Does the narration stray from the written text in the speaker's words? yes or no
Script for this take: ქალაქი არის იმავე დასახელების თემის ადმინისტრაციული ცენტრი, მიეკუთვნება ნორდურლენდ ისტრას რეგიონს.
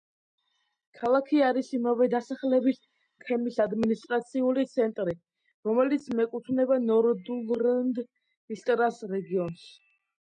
yes